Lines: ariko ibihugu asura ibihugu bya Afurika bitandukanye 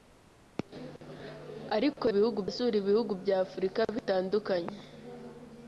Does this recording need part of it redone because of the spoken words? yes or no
no